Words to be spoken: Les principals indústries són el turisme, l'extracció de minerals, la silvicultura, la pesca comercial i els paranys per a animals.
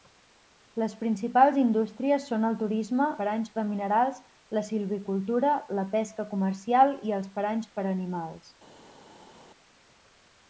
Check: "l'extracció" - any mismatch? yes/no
yes